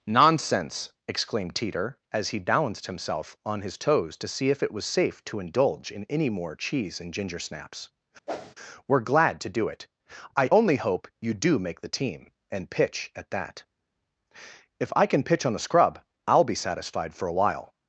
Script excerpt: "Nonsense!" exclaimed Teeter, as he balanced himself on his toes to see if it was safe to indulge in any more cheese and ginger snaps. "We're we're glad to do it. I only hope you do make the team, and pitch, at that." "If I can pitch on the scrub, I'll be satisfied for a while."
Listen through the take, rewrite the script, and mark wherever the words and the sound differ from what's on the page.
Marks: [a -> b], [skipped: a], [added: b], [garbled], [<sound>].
"Nonsense!" exclaimed Teeter, as he balanced himself on his toes to see if it was safe to indulge in any more cheese and ginger snaps. [whoosh] "We're [skipped: we're] glad to do it. I only hope you do make the team, and pitch, at that." "If I can pitch on the scrub, I'll be satisfied for a while."